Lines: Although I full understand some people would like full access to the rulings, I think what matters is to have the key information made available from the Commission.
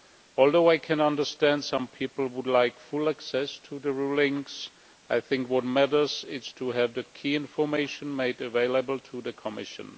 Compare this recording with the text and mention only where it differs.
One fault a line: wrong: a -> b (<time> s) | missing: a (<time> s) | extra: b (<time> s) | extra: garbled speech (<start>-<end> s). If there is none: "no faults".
wrong: full -> can (0.8 s)
wrong: from -> to (9.0 s)